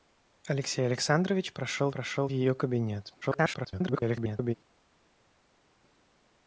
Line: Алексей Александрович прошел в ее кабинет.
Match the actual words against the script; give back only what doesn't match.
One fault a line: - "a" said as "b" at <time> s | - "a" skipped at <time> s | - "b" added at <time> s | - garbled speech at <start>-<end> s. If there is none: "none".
- "прошел" added at 1.9 s
- garbled speech at 3.2-4.5 s